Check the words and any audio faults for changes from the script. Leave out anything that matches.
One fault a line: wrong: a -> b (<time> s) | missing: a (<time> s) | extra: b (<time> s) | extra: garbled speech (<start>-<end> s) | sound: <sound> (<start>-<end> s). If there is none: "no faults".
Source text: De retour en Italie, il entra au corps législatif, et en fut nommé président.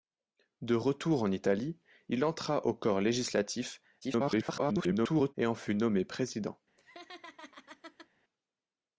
extra: garbled speech (4.0-5.3 s)
sound: laugh (6.8-8.1 s)